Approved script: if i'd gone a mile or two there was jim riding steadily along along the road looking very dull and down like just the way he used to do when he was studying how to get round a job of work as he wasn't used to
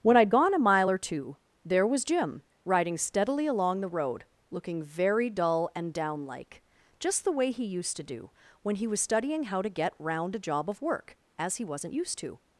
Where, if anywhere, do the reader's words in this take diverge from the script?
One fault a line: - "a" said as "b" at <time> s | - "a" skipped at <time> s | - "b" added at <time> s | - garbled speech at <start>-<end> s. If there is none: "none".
- "if" said as "when" at 0.0 s
- "along" skipped at 3.8 s